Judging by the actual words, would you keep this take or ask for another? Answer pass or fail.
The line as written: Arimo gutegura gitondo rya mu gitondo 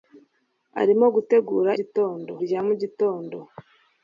pass